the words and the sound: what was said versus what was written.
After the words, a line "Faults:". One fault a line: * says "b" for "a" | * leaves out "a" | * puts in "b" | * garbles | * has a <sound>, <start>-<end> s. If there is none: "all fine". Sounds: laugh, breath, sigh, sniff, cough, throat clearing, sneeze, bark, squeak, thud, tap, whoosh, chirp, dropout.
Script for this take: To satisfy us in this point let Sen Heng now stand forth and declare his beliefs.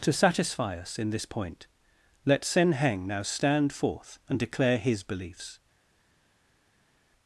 To satisfy us in this point let Sen Heng now stand forth and declare his beliefs.
Faults:
all fine